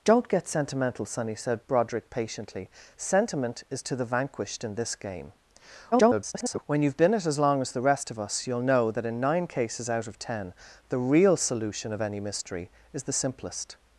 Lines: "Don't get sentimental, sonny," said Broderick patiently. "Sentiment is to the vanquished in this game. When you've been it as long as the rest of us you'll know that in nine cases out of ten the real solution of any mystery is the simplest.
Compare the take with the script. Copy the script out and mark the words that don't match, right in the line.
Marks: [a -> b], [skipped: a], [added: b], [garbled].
"Don't get sentimental, sonny," said Broderick patiently. "Sentiment is to the vanquished in this game. [garbled] When you've been it as long as the rest of us you'll know that in nine cases out of ten the real solution of any mystery is the simplest.